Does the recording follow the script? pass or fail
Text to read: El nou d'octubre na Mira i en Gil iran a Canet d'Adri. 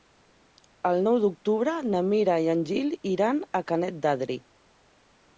pass